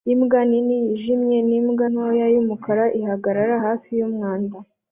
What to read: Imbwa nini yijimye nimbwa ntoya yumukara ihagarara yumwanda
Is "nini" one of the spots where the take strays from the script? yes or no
no